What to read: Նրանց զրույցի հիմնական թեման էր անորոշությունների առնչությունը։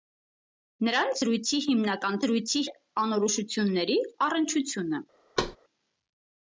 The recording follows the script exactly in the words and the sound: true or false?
false